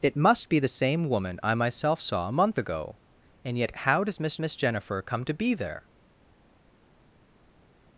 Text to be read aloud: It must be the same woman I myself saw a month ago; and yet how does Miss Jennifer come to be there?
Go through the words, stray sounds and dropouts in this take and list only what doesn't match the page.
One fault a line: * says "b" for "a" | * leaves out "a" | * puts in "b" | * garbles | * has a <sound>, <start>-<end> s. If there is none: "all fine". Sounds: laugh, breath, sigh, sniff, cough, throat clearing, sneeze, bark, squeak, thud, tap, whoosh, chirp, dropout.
* puts in "Miss"